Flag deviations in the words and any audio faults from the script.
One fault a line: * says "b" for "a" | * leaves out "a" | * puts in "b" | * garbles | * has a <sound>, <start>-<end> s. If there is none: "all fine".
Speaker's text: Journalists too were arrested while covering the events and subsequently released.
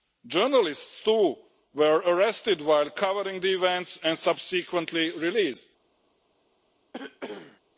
* has a cough, 6.9-7.6 s